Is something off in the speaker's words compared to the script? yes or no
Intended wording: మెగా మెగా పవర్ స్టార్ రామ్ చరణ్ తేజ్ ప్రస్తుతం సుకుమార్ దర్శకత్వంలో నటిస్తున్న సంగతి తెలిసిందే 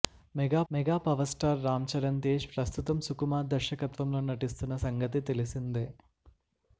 no